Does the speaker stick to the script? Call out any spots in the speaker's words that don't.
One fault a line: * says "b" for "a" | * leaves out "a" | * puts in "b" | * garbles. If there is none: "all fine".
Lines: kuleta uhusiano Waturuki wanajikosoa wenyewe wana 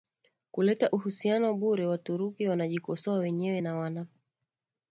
* puts in "bure"
* puts in "na"